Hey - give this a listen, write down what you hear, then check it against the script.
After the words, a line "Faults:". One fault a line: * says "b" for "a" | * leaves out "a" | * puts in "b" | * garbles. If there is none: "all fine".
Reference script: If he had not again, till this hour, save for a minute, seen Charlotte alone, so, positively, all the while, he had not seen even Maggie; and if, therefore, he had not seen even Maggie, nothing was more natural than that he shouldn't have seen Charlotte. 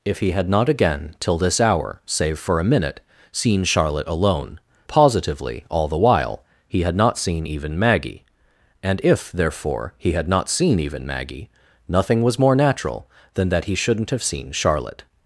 If he had not again, till this hour, save for a minute, seen Charlotte alone, positively, all the while, he had not seen even Maggie; and if, therefore, he had not seen even Maggie, nothing was more natural than that he shouldn't have seen Charlotte.
Faults:
* leaves out "so"